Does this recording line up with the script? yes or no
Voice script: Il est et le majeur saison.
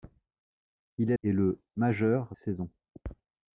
yes